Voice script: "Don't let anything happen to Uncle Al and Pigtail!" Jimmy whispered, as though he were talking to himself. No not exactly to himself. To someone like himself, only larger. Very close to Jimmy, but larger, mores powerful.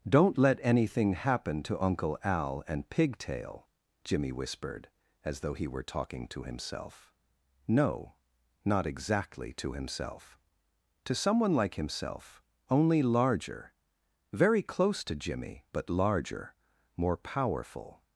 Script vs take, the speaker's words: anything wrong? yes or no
yes